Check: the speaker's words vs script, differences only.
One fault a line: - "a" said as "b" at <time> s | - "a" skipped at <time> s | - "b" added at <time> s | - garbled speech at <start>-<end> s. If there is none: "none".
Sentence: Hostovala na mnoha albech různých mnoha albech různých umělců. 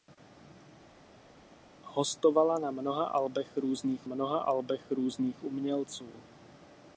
none